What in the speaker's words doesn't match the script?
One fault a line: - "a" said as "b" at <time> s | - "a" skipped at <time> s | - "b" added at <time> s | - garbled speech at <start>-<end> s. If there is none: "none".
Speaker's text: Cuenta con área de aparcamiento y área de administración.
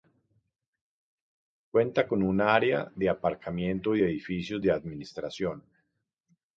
- "un" added at 2.2 s
- "área" said as "edificios" at 4.0 s